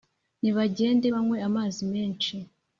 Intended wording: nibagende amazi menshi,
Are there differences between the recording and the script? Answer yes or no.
yes